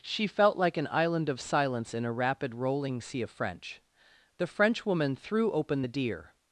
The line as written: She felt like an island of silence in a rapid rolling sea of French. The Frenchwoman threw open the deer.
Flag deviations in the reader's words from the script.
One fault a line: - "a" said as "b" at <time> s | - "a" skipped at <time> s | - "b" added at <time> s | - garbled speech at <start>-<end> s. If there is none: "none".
none